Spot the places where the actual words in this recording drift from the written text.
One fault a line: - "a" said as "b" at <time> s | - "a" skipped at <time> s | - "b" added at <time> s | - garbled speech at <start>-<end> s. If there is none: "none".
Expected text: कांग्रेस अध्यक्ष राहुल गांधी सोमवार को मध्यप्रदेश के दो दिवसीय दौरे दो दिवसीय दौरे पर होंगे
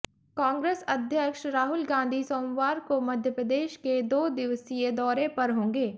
- "दो दिवसीय दौरे" skipped at 5.3 s